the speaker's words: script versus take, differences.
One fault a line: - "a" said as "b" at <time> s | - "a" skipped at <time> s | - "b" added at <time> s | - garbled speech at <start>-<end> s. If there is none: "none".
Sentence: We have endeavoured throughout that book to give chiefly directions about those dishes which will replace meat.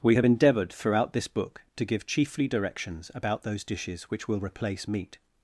- "that" said as "this" at 1.1 s